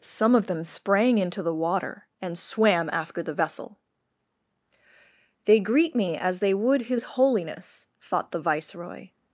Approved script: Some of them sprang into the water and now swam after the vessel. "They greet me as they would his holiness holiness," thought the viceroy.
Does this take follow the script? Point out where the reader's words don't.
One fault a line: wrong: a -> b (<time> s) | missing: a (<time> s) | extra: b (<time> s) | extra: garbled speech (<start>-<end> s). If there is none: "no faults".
missing: now (2.4 s)
missing: holiness (7.9 s)